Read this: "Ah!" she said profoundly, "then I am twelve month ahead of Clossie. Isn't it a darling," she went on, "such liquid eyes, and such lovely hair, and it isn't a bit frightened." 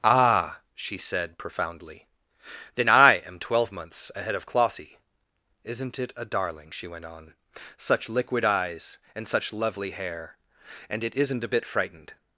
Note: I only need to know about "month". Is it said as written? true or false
false